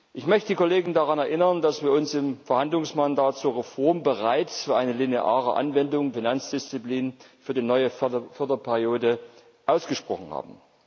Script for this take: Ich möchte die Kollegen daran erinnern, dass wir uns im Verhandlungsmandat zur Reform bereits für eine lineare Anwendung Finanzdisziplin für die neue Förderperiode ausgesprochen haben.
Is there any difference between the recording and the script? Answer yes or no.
no